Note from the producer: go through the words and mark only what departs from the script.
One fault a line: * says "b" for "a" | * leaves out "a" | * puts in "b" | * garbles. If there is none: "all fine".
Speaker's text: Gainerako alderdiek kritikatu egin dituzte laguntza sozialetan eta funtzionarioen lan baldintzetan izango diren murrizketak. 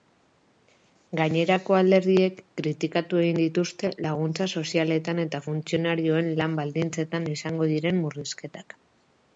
all fine